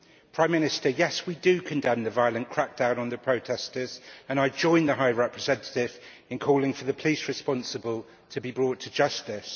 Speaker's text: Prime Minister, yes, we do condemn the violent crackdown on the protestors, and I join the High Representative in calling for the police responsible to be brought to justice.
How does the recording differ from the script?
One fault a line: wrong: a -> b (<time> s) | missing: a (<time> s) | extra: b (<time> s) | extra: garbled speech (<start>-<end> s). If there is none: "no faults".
no faults